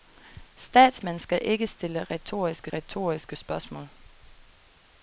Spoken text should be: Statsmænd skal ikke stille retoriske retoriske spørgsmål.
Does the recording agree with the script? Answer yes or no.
yes